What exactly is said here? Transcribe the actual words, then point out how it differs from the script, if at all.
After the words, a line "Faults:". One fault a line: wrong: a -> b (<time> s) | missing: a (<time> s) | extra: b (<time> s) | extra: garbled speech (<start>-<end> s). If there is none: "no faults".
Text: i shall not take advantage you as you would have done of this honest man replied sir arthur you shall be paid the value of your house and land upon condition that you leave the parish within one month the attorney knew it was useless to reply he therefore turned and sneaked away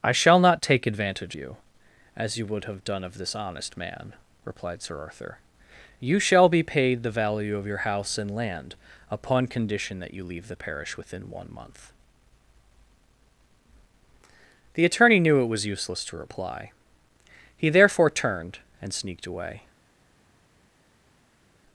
i shall not take advantage you as you would have done of this honest man replied sir arthur you shall be paid the value of your house and land upon condition that you leave the parish within one month the attorney knew it was useless to reply he therefore turned and sneaked away
Faults:
no faults